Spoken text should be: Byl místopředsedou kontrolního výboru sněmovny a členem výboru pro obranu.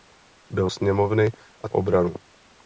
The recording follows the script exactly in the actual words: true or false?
false